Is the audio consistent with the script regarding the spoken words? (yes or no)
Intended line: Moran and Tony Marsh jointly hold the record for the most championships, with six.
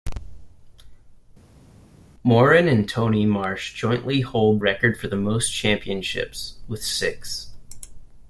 no